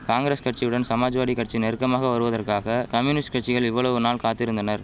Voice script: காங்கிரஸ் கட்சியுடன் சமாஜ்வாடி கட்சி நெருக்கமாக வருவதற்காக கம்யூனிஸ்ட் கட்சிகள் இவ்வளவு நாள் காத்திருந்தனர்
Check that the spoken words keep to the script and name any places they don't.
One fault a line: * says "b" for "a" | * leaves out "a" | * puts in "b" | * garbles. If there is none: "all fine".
all fine